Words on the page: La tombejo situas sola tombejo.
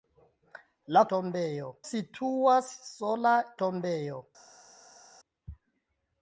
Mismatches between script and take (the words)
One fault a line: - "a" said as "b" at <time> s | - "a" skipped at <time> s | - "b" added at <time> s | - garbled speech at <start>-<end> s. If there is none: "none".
none